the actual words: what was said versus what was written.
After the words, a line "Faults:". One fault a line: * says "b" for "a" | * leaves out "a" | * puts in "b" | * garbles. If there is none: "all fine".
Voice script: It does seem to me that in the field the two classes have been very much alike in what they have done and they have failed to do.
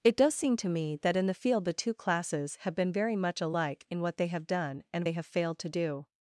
It does seem to me that in the field the two classes have been very much alike in what they have done and they have failed to do.
Faults:
all fine